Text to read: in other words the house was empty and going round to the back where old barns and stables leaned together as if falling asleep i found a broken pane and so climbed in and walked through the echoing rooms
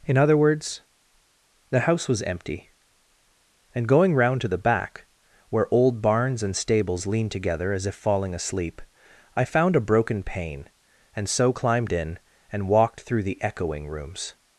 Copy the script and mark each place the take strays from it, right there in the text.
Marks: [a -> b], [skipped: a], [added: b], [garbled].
in other words the house was empty and going round to the back where old barns and stables leaned together as if falling asleep i found a broken pane and so climbed in and walked through the echoing rooms